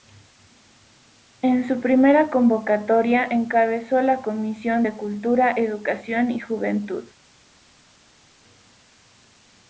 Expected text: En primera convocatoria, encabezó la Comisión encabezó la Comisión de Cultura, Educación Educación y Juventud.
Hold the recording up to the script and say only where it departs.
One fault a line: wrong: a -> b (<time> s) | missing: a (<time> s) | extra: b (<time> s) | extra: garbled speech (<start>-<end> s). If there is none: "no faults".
extra: su (1.6 s)
missing: encabezó la Comisión (4.8 s)
missing: Educación (6.3 s)